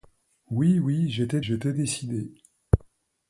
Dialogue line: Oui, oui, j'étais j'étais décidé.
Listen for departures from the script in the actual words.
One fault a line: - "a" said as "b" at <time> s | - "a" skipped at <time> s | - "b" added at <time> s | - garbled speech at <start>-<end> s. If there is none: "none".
none